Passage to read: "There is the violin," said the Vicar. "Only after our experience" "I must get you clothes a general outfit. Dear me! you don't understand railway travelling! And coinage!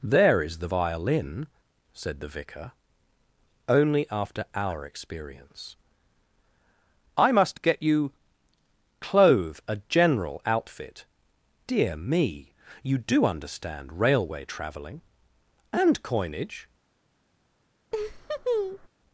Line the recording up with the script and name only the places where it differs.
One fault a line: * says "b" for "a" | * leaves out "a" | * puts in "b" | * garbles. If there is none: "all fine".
* says "clothe" for "clothes"
* says "do" for "don't"